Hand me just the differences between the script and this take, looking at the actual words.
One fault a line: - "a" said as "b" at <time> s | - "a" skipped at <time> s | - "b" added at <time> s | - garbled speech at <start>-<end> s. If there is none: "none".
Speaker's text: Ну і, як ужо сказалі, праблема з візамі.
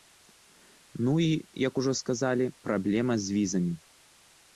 none